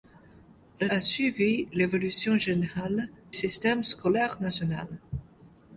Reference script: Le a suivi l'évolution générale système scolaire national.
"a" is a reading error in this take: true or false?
false